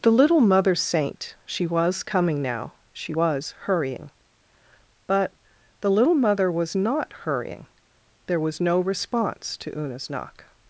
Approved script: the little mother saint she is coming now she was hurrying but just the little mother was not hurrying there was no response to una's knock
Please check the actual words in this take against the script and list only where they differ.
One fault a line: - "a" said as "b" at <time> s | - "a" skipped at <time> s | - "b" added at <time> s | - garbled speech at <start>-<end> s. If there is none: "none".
- "is" said as "was" at 1.7 s
- "just" skipped at 5.3 s